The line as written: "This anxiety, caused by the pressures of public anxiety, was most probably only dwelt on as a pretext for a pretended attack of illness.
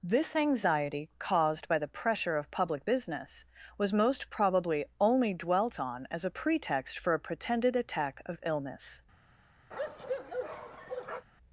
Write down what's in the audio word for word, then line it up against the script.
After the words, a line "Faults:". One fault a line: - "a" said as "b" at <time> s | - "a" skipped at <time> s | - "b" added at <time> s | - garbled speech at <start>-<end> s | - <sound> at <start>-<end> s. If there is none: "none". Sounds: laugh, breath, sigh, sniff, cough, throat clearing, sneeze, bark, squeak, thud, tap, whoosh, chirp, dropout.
"This anxiety, caused by the pressure of public business, was most probably only dwelt on as a pretext for a pretended attack of illness.
Faults:
- "pressures" said as "pressure" at 1.9 s
- "anxiety" said as "business" at 2.9 s
- bark at 9.7-11.3 s